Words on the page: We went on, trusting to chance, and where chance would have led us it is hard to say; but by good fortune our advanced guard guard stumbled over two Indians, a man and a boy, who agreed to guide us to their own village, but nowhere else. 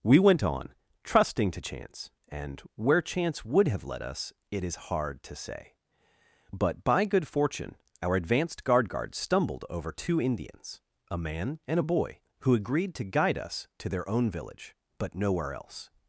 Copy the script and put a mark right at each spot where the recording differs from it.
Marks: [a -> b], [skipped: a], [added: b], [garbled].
We went on, trusting to chance, and where chance would have led us it is hard to say; but by good fortune our advanced guard guard stumbled over two Indians, a man and a boy, who agreed to guide us to their own village, but nowhere else.